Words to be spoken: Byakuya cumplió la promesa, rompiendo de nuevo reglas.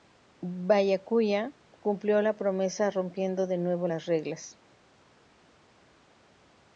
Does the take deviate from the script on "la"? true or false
false